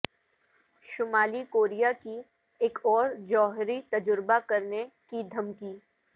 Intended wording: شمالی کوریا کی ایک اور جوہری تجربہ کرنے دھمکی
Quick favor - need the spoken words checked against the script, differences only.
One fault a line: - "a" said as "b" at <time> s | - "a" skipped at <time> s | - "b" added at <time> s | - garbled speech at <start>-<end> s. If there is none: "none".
- "کی" added at 5.1 s